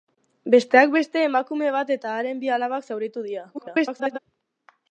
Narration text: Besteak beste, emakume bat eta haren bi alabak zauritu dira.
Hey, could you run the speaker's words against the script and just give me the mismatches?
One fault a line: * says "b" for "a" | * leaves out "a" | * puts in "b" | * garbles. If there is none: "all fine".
* garbles